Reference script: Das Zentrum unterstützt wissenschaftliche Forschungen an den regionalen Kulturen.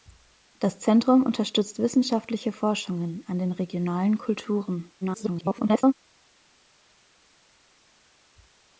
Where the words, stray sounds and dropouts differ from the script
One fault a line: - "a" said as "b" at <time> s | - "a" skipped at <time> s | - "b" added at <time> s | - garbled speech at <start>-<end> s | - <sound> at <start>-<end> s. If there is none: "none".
- garbled speech at 5.0-5.9 s